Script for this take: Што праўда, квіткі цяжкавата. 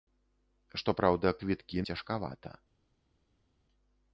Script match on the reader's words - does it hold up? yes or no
yes